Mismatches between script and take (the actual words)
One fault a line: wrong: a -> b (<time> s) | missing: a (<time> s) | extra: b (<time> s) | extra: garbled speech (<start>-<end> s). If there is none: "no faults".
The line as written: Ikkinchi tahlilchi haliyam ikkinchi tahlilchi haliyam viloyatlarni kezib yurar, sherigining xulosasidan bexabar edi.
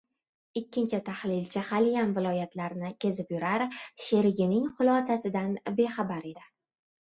missing: ikkinchi tahlilchi haliyam (2.1 s)